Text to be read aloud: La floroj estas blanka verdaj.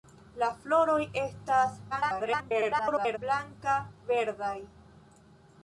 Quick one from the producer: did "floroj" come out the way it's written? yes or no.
yes